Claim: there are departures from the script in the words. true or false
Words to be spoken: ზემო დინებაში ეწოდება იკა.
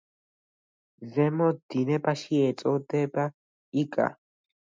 false